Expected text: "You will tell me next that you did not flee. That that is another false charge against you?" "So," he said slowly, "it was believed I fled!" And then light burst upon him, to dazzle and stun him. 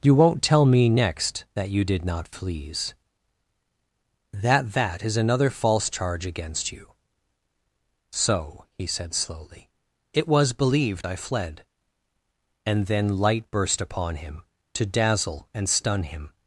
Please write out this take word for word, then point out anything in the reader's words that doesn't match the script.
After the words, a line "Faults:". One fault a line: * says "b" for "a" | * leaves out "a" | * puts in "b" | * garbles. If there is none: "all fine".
"You won't tell me next that you did not flees. That that is another false charge against you?" "So," he said slowly, "it was believed I fled!" And then light burst upon him, to dazzle and stun him.
Faults:
* says "won't" for "will"
* says "flees" for "flee"